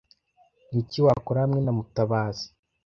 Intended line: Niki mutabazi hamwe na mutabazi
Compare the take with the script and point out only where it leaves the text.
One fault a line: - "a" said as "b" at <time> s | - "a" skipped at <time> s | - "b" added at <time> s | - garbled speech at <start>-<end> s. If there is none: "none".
- "mutabazi" said as "wakora" at 1.1 s